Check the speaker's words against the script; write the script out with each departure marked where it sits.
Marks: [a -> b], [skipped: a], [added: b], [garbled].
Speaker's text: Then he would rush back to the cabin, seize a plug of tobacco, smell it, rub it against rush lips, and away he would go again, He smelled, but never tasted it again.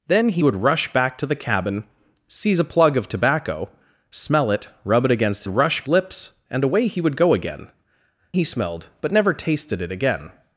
Then he would rush back to the cabin, seize a plug of tobacco, smell it, rub it against rush lips, and away he would go again, He smelled, but never tasted it again.